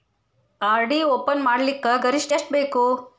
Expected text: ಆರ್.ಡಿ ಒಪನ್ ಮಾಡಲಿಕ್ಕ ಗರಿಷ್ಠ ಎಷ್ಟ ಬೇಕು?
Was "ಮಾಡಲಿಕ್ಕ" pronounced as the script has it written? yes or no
yes